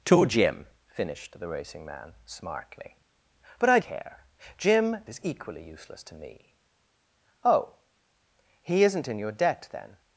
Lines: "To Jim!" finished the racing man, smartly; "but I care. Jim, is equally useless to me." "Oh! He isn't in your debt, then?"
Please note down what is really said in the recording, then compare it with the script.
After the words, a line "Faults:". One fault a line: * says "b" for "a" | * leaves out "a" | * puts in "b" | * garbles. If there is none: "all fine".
"To Jim!" finished the racing man, smartly; "but I care. Jim, is equally useless to me." "Oh! He isn't in your debt, then?"
Faults:
all fine